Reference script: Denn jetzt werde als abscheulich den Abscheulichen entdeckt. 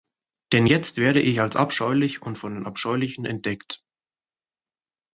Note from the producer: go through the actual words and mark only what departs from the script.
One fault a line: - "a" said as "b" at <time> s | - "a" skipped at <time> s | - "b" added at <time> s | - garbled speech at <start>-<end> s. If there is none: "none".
- "ich" added at 1.2 s
- "und von" added at 2.2 s